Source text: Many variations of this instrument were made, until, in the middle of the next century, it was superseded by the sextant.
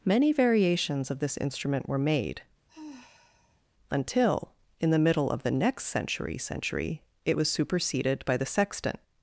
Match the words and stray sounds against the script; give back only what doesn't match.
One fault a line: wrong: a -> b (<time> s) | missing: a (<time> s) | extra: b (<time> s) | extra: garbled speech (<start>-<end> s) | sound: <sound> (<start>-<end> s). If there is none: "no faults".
sound: sigh (2.7-3.6 s)
extra: century (6.4 s)